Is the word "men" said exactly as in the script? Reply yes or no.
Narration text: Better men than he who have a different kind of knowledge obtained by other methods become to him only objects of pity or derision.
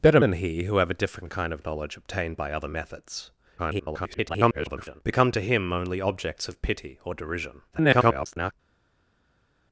no